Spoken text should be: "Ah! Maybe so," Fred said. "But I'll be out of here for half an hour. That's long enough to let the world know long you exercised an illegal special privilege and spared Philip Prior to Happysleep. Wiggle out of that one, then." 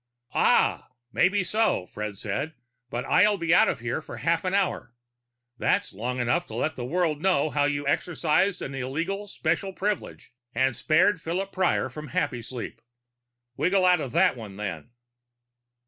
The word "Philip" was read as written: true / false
true